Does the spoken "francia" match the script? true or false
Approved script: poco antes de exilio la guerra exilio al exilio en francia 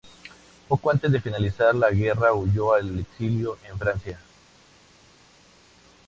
true